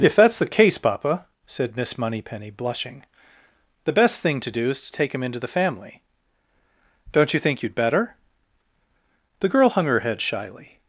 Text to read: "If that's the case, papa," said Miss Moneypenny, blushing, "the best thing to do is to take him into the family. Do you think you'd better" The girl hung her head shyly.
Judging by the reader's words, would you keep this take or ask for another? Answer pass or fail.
fail